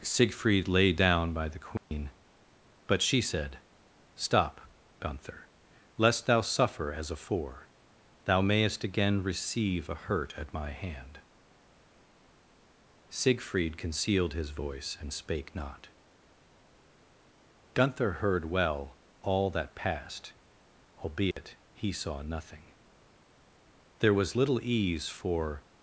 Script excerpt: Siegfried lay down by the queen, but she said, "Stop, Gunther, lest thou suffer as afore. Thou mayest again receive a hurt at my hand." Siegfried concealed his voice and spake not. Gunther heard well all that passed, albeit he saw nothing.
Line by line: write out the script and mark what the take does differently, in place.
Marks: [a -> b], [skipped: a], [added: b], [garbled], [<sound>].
Siegfried lay down by the queen, [dropout] but she said, "Stop, Gunther, lest thou suffer as afore. Thou mayest again receive a hurt at my hand." Siegfried concealed his voice and spake not. Gunther heard well all that passed, albeit [dropout] he saw nothing. [added: There was little ease for]